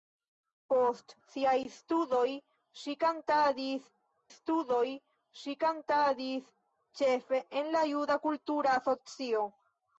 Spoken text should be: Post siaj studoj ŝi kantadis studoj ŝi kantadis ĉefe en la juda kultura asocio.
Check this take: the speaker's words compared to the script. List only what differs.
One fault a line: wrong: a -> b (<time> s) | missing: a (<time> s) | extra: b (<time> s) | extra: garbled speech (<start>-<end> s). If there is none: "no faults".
no faults